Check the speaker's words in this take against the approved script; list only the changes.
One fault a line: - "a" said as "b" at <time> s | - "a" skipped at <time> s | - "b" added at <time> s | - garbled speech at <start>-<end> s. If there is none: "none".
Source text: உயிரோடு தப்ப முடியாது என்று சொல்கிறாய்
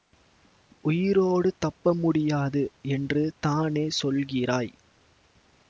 - "தானே" added at 3.4 s